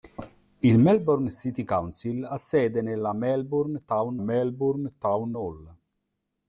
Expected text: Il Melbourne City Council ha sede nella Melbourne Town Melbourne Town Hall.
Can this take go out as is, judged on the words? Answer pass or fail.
pass